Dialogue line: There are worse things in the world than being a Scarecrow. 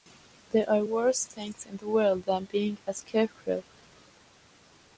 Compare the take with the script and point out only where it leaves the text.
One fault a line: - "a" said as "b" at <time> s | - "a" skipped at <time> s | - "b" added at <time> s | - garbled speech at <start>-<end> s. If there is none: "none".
none